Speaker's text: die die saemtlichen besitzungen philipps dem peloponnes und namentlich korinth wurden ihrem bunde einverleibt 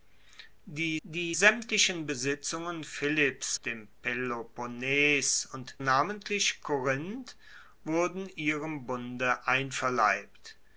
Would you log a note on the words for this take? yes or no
no